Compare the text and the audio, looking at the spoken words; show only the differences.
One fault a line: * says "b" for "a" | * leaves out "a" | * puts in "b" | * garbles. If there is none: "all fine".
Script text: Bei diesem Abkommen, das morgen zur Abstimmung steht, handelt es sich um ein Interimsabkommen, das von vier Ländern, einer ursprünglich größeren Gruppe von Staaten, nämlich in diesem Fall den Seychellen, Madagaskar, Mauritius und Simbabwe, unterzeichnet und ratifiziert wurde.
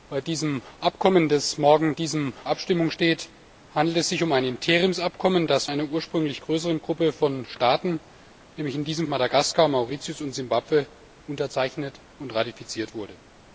* says "diesem" for "zur"
* leaves out "von vier Ländern"
* leaves out "Fall den Seychellen"